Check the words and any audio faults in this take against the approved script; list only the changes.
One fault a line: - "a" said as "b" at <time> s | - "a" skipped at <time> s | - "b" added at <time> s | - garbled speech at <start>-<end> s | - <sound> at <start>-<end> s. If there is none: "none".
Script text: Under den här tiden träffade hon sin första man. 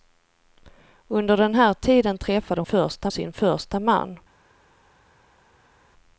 - "hon" said as "första" at 2.6 s